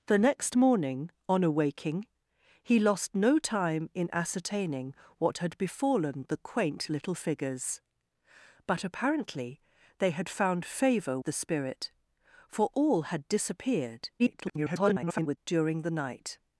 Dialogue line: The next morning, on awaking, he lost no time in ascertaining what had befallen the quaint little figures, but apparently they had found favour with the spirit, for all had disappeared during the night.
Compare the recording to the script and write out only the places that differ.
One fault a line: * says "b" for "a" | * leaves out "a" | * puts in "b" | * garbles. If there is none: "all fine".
* leaves out "with"
* garbles